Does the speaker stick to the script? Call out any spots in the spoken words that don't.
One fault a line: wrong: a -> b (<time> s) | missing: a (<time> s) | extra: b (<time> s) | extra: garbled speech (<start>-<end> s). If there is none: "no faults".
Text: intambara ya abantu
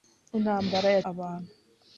no faults